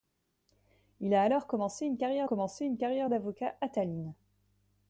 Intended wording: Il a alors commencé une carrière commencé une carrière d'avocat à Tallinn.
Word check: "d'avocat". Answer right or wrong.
right